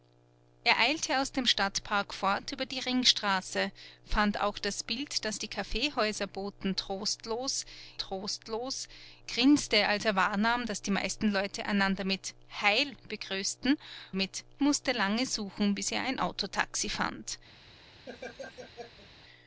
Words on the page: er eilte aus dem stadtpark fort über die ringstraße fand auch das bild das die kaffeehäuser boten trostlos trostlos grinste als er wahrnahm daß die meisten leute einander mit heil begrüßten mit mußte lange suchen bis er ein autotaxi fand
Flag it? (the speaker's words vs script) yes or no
no